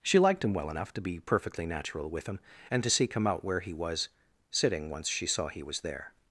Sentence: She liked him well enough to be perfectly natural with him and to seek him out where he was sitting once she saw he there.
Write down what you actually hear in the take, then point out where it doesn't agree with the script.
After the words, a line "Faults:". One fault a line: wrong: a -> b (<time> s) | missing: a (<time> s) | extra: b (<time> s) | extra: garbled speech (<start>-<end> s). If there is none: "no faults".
She liked him well enough to be perfectly natural with him and to seek him out where he was sitting once she saw he was there.
Faults:
extra: was (5.6 s)